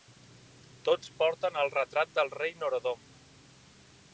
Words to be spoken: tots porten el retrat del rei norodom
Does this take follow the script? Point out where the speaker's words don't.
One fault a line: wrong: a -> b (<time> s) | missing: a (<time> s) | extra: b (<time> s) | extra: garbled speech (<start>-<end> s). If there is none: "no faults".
no faults